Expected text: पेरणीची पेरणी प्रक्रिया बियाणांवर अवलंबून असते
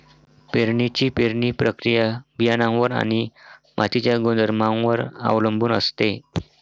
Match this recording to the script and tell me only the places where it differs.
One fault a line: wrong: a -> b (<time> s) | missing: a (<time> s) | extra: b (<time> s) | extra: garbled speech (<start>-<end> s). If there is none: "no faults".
extra: आणि मातीच्या गुणधर्मांवर (2.9 s)